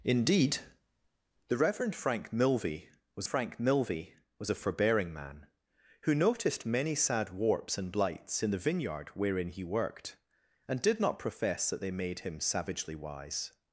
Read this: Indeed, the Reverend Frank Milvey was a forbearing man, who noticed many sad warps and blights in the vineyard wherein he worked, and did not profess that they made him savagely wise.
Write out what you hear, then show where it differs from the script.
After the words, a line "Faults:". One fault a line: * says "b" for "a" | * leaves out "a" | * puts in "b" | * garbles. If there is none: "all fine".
Indeed, the Reverend Frank Milvey was Frank Milvey was a forbearing man, who noticed many sad warps and blights in the vineyard wherein he worked, and did not profess that they made him savagely wise.
Faults:
* puts in "Frank Milvey was"